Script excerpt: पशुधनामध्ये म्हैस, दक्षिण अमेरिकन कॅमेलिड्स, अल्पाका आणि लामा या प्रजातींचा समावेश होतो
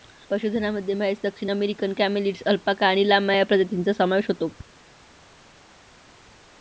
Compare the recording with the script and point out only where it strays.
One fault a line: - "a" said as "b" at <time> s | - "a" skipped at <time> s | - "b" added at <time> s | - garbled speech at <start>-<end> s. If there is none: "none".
none